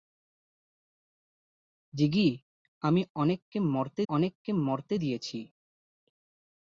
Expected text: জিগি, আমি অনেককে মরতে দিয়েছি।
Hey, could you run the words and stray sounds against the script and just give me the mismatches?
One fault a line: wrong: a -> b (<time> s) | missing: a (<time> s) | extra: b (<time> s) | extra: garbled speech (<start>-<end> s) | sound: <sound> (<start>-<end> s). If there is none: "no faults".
extra: অনেককে মরতে (4.1 s)